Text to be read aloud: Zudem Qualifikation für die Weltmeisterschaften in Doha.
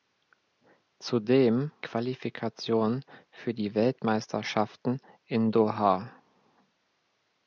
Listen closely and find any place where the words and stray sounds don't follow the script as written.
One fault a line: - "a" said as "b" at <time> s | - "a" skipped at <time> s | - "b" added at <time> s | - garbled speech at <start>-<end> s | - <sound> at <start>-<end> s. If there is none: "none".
none